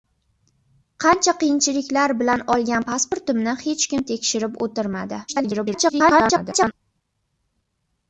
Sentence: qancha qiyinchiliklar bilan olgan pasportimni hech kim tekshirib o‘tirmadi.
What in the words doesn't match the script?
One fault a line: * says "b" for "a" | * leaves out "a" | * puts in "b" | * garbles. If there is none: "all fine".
* garbles